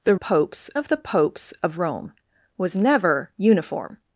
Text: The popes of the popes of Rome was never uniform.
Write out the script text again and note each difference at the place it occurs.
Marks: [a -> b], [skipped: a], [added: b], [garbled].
The popes of the popes of Rome was never uniform.